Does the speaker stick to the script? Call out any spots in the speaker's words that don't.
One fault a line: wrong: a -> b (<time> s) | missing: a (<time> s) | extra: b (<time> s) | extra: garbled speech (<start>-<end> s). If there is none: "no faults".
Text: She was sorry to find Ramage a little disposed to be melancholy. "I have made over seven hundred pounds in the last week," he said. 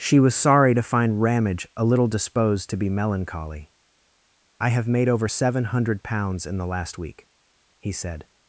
no faults